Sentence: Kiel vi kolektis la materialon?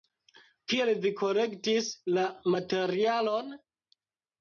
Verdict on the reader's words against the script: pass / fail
pass